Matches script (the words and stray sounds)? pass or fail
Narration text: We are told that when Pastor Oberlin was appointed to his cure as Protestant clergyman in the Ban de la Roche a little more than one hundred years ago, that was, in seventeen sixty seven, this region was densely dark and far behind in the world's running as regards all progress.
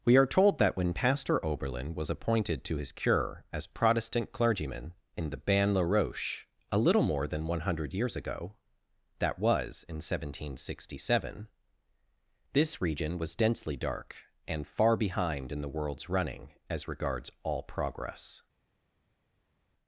fail